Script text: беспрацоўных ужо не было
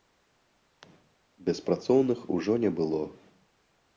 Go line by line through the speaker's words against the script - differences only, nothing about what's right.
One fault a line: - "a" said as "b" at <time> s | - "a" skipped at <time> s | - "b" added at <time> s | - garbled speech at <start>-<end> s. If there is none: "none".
none